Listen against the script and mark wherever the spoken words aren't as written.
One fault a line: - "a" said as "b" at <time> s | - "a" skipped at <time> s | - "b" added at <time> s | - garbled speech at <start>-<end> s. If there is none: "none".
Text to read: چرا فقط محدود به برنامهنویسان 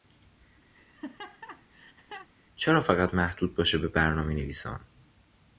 - "باشه" added at 3.5 s